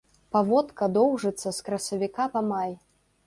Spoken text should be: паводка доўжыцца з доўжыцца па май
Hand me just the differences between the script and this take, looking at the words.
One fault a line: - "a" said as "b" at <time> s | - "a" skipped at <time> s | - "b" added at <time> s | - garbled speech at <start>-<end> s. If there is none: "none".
- "доўжыцца" said as "красавіка" at 1.7 s